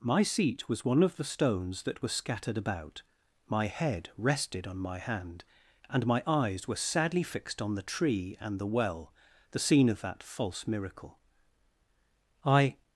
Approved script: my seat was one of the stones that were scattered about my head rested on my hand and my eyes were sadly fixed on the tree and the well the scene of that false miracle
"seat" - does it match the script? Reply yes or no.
yes